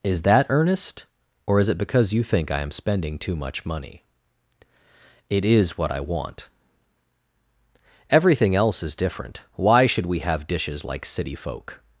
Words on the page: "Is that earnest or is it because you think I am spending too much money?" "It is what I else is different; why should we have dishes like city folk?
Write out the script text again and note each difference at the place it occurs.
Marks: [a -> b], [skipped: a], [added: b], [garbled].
"Is that earnest or is it because you think I am spending too much money?" "It is what I [added: want Everything] else is different; why should we have dishes like city folk?